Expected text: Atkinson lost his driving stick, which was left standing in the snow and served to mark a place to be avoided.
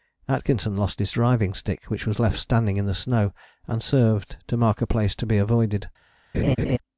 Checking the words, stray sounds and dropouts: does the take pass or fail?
fail